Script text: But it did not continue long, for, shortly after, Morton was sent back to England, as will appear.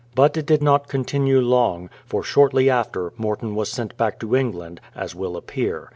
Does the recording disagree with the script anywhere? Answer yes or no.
no